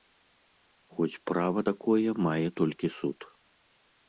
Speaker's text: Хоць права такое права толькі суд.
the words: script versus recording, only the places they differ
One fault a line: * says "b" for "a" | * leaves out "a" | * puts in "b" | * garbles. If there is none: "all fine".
* says "мае" for "права"